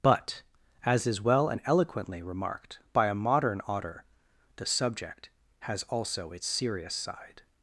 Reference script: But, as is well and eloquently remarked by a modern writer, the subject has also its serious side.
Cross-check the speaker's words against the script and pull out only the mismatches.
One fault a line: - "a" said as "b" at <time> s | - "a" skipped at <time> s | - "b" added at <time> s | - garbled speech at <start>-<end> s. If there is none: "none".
- "writer" said as "otter" at 3.7 s